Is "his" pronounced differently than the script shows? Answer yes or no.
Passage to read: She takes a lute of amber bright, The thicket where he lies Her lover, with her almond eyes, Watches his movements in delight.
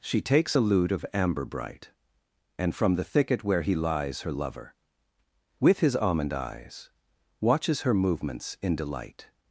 yes